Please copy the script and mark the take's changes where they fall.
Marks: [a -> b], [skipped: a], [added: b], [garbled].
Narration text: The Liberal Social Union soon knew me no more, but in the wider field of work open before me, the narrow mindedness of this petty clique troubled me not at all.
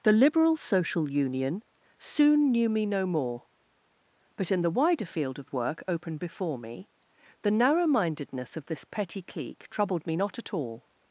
The Liberal Social Union soon knew me no more, but in the wider field of work open before me, the narrow mindedness of this petty clique troubled me not at all.